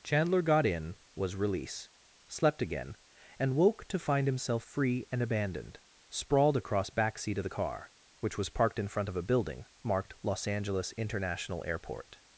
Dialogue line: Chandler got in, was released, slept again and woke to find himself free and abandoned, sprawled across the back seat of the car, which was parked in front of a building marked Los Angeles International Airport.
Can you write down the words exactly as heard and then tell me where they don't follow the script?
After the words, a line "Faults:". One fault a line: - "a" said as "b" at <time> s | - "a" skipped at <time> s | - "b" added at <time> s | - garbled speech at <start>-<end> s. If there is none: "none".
Chandler got in, was release, slept again and woke to find himself free and abandoned, sprawled across back seat of the car, which was parked in front of a building marked Los Angeles International Airport.
Faults:
- "released" said as "release" at 1.4 s
- "the" skipped at 6.9 s